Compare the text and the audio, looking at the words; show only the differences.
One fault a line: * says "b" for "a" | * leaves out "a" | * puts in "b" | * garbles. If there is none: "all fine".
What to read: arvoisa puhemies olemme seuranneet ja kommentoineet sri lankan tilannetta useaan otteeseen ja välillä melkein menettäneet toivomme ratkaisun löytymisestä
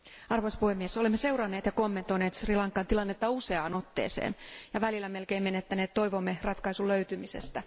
all fine